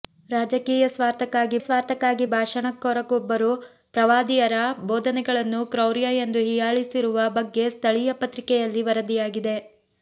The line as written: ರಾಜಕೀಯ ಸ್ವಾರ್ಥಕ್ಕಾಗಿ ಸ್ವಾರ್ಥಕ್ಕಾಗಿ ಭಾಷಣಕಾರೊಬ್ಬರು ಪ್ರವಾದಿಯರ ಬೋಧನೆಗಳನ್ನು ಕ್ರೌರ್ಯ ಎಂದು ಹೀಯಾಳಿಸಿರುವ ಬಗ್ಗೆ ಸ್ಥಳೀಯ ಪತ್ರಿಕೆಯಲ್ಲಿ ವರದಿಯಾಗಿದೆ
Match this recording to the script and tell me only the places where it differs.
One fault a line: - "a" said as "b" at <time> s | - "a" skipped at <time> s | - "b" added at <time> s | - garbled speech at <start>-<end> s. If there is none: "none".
none